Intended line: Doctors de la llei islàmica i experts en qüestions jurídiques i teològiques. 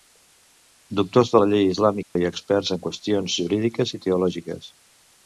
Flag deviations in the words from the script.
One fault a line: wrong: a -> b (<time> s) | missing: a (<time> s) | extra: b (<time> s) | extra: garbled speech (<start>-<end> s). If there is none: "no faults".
no faults